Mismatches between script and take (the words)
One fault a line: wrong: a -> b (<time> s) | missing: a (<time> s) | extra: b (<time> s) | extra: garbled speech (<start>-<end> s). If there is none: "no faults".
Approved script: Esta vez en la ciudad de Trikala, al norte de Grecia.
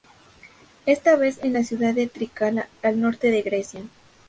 no faults